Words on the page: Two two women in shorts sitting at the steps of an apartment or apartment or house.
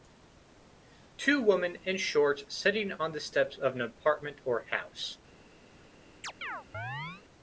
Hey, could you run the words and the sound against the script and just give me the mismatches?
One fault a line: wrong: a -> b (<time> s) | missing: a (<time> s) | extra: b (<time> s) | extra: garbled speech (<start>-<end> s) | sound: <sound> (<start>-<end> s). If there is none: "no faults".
missing: two (1.4 s)
wrong: at -> on (3.0 s)
missing: apartment or (4.6 s)
sound: chirp (6.2-7.2 s)